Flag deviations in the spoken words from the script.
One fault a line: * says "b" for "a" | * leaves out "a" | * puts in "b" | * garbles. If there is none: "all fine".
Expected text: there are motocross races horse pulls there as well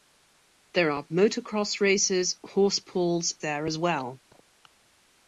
all fine